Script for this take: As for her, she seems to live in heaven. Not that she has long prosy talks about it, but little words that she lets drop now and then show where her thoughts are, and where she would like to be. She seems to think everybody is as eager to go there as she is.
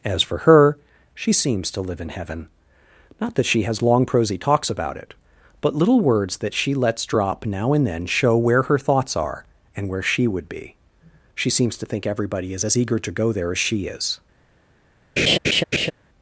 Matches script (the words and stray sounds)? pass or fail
fail